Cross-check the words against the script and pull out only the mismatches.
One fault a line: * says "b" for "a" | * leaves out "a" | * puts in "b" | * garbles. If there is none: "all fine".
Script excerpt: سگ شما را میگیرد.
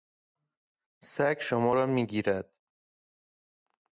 all fine